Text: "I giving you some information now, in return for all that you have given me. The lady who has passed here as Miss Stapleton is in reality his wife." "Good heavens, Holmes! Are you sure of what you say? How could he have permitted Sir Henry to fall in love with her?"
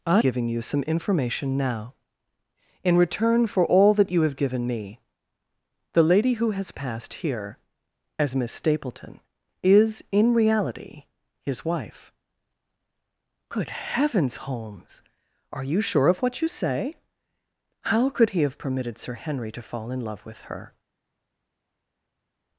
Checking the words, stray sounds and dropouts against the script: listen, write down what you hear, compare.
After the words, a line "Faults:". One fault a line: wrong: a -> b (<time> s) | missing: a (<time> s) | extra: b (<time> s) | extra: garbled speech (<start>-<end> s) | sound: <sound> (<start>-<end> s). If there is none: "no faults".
"I giving you some information now, in return for all that you have given me. The lady who has passed here as Miss Stapleton is in reality his wife." "Good heavens, Holmes! Are you sure of what you say? How could he have permitted Sir Henry to fall in love with her?"
Faults:
no faults